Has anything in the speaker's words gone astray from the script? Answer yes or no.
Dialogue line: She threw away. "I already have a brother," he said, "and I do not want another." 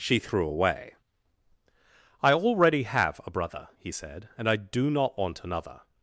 no